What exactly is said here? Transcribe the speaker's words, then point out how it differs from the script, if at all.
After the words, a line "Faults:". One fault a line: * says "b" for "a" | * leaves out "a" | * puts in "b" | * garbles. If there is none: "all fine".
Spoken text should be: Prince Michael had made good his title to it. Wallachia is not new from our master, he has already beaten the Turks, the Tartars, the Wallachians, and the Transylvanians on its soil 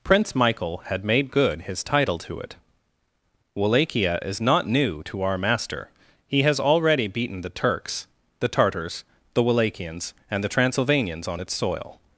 Prince Michael had made good his title to it. Wallachia is not new to our master, he has already beaten the Turks, the Tartars, the Wallachians, and the Transylvanians on its soil
Faults:
* says "to" for "from"